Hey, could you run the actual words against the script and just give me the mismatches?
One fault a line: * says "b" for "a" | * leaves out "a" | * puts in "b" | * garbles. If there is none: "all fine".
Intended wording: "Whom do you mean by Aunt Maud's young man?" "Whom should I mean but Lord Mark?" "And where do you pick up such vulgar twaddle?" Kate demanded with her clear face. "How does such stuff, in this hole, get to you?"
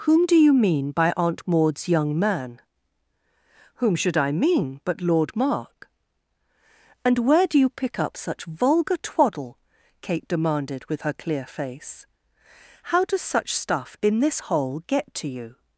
all fine